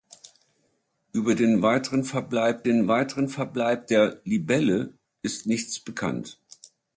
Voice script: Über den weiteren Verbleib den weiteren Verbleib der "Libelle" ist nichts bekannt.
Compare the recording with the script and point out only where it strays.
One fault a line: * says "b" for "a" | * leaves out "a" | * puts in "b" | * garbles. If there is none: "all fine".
all fine